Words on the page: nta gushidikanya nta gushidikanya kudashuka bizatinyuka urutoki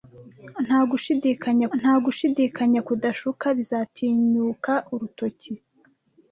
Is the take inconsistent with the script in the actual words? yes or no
no